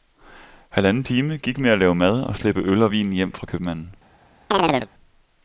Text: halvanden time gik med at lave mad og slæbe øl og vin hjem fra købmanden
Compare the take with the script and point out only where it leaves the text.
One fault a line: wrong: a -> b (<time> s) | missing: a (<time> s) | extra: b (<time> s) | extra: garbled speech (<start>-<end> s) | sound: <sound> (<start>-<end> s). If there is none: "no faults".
sound: chirp (4.5-4.9 s)